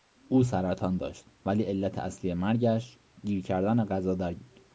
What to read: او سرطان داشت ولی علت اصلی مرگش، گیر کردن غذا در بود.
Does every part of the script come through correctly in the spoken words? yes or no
yes